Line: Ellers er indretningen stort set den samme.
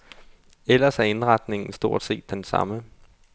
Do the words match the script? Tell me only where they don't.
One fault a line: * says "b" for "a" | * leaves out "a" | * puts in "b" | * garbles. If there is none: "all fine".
all fine